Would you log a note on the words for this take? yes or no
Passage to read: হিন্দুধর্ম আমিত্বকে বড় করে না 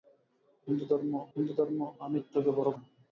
yes